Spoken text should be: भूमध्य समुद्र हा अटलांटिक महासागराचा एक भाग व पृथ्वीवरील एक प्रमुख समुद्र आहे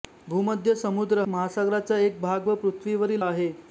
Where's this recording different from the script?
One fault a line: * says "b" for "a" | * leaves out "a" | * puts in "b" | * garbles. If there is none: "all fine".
* leaves out "हा अटलांटिक"
* leaves out "एक प्रमुख समुद्र"